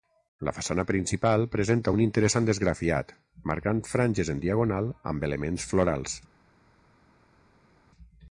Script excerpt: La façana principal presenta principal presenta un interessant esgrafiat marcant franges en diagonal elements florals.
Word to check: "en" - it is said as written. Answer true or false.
true